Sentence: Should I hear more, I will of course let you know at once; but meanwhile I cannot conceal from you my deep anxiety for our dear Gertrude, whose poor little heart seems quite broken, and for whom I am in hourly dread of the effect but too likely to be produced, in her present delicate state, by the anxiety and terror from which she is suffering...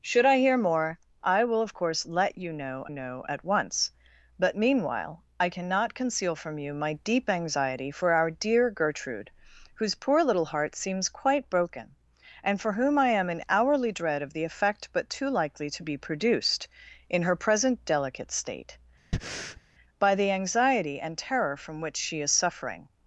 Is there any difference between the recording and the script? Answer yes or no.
yes